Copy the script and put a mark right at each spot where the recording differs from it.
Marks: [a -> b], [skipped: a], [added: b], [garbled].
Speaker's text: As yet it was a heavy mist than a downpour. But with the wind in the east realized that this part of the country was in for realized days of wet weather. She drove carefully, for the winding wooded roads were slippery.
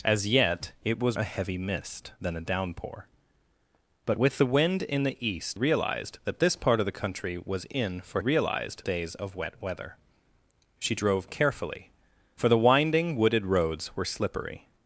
As yet it was a heavy mist than a downpour. But with the wind in the east realized that this part of the country was in for realized days of wet weather. She drove carefully, for the winding wooded roads were slippery.